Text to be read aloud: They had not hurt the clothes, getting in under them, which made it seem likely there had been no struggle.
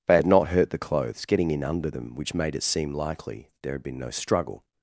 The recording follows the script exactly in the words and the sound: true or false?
true